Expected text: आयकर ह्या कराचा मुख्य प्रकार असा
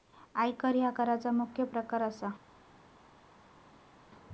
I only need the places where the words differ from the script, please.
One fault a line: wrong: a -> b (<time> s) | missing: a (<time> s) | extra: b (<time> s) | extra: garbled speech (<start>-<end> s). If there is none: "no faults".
no faults